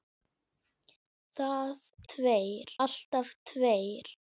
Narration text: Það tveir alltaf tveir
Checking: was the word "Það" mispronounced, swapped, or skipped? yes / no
no